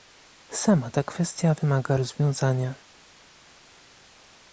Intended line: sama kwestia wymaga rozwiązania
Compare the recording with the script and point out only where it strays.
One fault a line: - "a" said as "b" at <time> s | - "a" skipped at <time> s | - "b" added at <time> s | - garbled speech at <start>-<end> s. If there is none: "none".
- "ta" added at 0.9 s